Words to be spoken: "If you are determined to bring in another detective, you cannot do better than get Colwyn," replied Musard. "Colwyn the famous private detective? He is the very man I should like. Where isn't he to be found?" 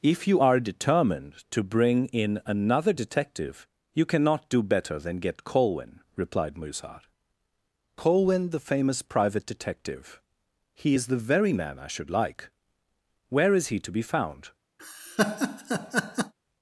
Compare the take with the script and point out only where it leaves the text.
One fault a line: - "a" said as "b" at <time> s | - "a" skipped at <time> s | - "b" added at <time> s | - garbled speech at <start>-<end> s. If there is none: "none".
- "isn't" said as "is" at 13.5 s